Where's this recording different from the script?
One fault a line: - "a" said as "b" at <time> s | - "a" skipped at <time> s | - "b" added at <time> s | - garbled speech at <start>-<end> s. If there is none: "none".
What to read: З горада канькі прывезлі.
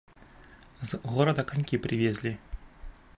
none